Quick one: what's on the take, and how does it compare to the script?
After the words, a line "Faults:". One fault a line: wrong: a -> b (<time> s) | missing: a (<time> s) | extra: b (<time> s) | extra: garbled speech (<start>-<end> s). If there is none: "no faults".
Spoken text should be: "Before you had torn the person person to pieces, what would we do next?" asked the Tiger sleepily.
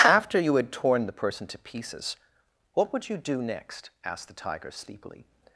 "After you had torn the person to pieces, what would you do next?" asked the Tiger sleepily.
Faults:
wrong: Before -> After (0.0 s)
missing: person (1.4 s)
wrong: we -> you (3.1 s)